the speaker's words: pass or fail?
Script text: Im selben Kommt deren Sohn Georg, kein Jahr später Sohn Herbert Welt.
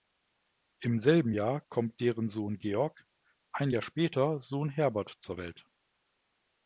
fail